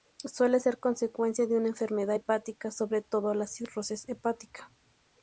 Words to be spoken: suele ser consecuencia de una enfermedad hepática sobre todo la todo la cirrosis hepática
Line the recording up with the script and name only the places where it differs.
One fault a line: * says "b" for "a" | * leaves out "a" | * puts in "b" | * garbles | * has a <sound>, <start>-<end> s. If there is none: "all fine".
* leaves out "todo la"